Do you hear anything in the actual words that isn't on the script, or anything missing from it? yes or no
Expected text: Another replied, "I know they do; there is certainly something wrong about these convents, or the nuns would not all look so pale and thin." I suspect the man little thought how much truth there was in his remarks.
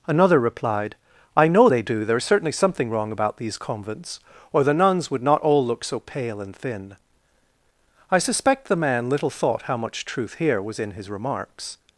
yes